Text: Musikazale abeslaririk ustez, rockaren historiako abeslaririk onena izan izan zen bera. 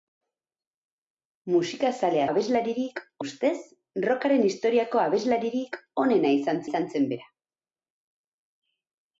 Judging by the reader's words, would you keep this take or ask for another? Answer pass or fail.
pass